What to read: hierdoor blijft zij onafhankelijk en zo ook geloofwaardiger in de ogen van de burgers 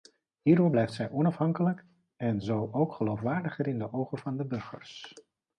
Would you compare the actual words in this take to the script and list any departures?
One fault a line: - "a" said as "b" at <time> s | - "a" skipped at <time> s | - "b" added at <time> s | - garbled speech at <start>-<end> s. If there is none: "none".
none